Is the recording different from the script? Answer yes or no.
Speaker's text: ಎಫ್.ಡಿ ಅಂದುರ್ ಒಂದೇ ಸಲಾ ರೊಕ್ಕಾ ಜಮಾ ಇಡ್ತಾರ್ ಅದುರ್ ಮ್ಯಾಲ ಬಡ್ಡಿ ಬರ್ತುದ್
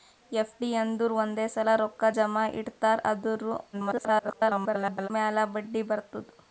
yes